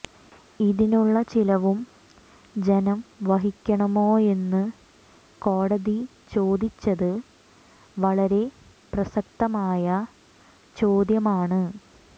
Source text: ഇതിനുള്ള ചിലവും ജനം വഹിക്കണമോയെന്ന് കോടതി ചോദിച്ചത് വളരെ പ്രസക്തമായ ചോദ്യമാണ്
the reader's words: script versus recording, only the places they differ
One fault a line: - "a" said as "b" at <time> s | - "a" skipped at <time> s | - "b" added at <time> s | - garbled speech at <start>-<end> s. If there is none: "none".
none